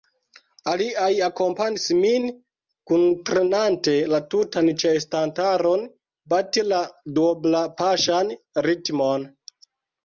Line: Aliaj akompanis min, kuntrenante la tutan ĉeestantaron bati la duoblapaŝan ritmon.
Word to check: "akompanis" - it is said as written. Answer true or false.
true